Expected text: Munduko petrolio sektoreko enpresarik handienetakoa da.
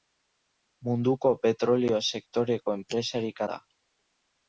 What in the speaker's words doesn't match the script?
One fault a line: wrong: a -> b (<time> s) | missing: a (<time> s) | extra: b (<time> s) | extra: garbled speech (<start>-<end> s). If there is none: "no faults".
missing: handienetakoa (3.4 s)